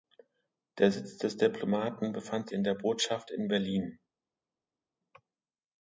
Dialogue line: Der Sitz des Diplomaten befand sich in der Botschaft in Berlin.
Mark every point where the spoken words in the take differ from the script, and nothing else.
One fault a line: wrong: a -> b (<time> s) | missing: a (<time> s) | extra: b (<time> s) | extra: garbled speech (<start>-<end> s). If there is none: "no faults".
missing: sich (2.5 s)